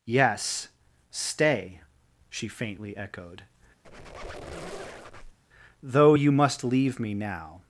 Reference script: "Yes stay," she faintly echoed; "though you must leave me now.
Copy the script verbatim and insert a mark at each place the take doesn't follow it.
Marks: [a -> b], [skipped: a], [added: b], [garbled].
"Yes stay," she faintly echoed; "though you must leave me now.